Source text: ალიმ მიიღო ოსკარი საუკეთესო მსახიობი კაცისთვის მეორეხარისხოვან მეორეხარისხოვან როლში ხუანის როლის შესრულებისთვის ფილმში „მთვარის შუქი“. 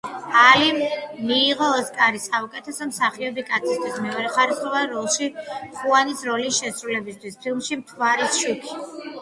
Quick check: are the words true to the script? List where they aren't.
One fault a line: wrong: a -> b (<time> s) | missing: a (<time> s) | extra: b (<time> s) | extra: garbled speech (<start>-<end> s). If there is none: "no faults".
missing: მეორეხარისხოვან (4.9 s)